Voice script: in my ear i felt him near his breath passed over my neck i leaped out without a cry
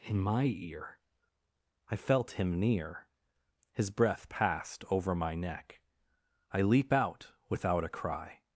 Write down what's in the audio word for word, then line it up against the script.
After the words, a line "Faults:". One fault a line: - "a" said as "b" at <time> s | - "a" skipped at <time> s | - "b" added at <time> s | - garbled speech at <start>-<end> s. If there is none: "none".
in my ear i felt him near his breath passed over my neck i leap out without a cry
Faults:
- "leaped" said as "leap" at 6.6 s